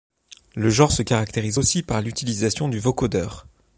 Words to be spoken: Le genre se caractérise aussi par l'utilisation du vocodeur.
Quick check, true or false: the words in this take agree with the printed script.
true